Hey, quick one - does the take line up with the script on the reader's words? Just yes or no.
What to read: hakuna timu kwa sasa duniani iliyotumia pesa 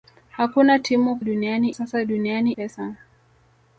no